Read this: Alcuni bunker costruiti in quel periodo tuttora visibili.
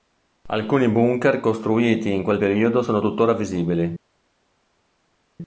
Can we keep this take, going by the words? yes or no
no